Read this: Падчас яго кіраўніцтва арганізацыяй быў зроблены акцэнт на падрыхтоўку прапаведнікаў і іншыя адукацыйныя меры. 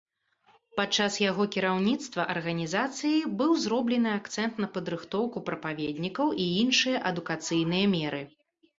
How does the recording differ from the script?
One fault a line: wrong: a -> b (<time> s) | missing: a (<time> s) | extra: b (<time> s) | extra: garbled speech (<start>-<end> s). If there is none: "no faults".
no faults